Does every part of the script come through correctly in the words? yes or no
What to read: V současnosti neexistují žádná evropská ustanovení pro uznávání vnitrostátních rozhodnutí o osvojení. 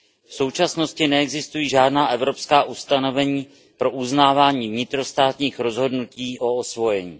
yes